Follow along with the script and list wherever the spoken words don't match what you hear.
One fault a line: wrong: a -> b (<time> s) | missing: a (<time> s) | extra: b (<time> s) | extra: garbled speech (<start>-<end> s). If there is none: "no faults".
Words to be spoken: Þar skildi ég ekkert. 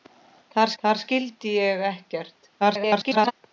extra: þar (0.8 s)
extra: garbled speech (2.6-3.3 s)